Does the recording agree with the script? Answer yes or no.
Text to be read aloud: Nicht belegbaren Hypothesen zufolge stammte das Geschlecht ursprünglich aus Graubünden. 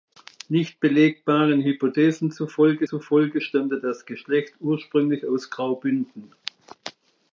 no